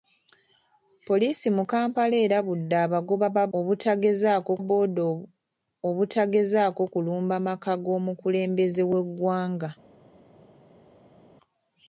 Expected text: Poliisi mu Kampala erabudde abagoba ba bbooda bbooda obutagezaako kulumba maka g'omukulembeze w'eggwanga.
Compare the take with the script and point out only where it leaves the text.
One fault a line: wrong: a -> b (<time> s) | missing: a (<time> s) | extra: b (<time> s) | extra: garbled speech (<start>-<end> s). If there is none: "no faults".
wrong: bbooda -> obutagezaako (3.6 s)